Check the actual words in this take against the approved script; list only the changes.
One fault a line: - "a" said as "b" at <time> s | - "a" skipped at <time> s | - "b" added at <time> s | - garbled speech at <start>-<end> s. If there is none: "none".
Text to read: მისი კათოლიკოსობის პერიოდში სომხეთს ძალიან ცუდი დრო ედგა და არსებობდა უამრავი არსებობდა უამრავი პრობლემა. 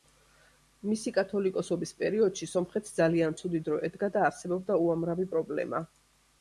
- "არსებობდა უამრავი" skipped at 5.3 s